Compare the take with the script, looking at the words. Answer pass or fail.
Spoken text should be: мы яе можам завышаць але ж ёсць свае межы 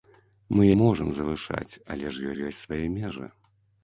fail